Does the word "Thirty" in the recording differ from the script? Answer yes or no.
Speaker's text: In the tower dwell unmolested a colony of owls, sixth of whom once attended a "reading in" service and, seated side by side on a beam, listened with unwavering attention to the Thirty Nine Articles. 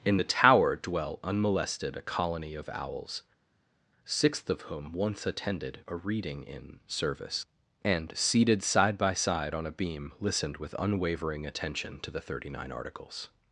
no